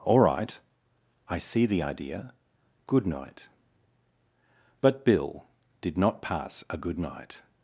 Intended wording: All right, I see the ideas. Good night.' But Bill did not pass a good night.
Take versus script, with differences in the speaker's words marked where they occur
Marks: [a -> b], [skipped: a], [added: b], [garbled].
All right, I see the [ideas. -> idea] Good night.' But Bill did not pass a good night.